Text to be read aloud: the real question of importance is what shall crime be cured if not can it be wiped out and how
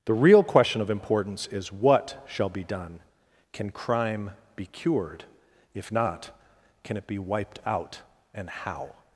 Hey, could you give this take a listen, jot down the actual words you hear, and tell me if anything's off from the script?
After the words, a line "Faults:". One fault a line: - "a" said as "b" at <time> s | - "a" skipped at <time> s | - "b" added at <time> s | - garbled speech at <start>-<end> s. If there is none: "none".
the real question of importance is what shall be done can crime be cured if not can it be wiped out and how
Faults:
- "be done can" added at 2.5 s